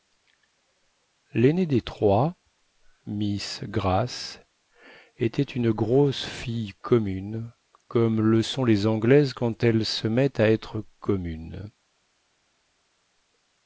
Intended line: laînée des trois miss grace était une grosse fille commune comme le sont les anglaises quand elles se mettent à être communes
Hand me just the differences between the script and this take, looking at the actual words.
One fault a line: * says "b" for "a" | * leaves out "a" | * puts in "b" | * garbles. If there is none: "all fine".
all fine